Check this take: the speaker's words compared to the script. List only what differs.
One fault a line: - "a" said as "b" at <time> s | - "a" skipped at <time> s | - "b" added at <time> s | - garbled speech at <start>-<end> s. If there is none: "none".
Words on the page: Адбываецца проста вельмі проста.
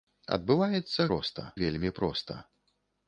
none